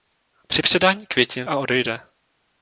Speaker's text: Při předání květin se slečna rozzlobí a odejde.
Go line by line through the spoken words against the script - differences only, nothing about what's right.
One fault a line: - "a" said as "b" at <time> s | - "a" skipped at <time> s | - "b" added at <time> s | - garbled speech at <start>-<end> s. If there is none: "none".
- "se slečna rozzlobí" skipped at 1.5 s